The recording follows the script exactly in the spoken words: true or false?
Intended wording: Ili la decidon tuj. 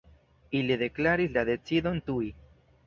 false